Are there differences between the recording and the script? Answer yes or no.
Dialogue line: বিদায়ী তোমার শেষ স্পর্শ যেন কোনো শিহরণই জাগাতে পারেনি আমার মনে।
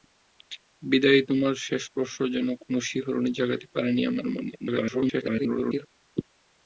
yes